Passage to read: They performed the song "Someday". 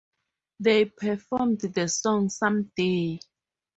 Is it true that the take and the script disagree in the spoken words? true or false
false